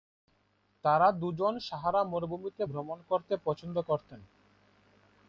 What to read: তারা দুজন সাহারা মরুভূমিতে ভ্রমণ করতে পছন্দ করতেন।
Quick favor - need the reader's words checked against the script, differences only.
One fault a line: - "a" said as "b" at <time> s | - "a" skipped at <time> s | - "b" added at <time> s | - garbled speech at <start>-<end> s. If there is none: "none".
none